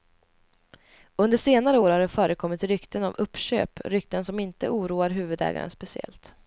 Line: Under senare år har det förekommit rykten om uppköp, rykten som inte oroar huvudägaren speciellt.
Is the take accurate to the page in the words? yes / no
yes